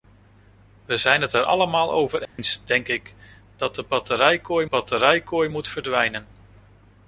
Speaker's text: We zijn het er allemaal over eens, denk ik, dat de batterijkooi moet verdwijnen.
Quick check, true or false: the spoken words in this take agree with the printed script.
false